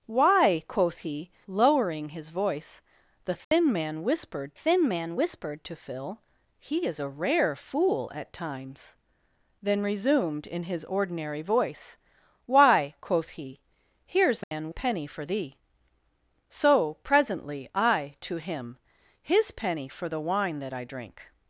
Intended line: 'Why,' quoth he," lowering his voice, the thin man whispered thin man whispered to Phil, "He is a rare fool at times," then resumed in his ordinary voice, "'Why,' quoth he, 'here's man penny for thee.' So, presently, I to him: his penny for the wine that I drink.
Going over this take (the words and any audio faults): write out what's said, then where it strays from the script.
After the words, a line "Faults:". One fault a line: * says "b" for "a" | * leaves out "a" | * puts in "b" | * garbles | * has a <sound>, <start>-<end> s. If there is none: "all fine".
'Why,' quoth he," lowering his voice, the thin man whispered thin man whispered to Phil, "He is a rare fool at times," then resumed in his ordinary voice, "'Why,' quoth he, 'here's man penny for thee.' So, presently, I to him: his penny for the wine that I drink.
Faults:
* has a dropout, 3.4-3.5 s
* has a dropout, 14.4-14.5 s